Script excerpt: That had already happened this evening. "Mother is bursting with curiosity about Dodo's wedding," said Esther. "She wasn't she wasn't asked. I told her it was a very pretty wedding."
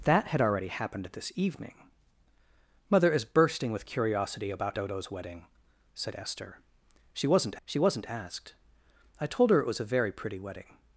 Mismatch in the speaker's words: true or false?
false